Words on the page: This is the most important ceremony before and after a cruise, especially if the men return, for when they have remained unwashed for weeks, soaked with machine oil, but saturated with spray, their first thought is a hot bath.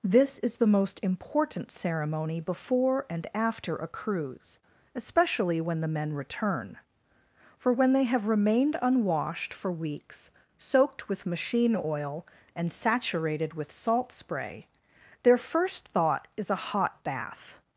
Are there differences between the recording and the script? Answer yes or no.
yes